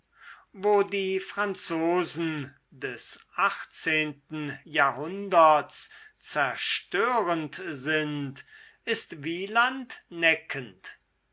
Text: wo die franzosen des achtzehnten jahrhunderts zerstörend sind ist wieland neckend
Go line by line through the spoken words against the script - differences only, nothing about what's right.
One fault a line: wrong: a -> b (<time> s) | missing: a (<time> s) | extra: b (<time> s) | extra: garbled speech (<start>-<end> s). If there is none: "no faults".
no faults